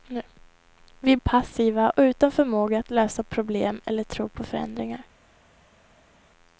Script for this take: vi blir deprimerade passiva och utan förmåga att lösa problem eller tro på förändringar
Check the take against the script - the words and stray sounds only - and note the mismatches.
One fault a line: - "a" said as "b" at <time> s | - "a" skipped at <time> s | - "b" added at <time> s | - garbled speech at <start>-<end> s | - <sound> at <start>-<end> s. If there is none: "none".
- "blir deprimerade" skipped at 1.2 s